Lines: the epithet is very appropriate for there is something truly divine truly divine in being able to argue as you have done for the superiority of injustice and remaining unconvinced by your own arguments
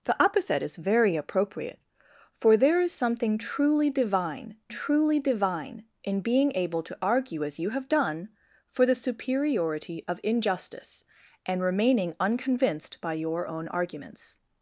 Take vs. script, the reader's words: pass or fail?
pass